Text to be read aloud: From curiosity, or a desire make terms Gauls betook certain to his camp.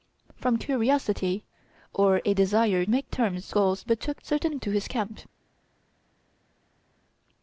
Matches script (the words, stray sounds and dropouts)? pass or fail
pass